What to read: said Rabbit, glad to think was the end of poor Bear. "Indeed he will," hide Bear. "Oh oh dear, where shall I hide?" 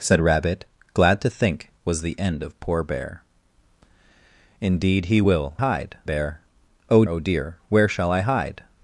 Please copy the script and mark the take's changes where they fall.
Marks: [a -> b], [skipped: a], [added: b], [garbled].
said Rabbit, glad to think was the end of poor Bear. "Indeed he will," hide Bear. "Oh oh dear, where shall I hide?"